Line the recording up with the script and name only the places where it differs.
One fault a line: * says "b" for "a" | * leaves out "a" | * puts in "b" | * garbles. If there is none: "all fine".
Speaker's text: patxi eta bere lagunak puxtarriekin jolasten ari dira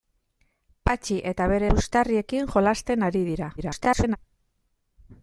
* leaves out "lagunak"
* garbles